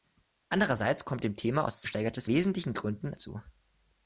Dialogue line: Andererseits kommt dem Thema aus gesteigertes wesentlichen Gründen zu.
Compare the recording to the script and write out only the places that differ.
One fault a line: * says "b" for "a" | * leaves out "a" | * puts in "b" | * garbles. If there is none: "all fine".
all fine